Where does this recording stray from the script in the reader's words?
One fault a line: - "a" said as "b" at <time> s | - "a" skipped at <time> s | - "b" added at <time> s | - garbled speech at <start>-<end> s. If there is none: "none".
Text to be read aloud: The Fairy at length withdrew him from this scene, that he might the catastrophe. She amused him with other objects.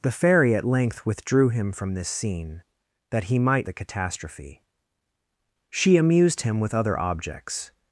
none